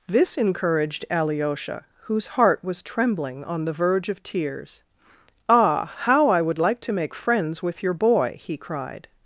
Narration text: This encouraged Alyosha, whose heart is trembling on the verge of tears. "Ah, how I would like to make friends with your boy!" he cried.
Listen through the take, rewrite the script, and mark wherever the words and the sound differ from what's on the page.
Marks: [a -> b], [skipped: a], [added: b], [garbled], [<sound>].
This encouraged Alyosha, whose heart [is -> was] trembling on the verge of tears. "Ah, how I would like to make friends with your boy!" he cried.